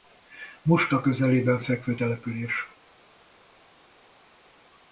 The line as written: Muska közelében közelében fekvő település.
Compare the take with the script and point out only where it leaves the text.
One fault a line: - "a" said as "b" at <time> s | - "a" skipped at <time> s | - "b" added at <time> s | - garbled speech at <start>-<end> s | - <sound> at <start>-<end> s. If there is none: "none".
- "közelében" skipped at 1.6 s